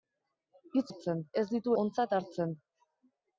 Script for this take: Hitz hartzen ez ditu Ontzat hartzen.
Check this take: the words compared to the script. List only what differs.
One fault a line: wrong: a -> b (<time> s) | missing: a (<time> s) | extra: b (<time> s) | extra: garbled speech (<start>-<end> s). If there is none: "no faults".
no faults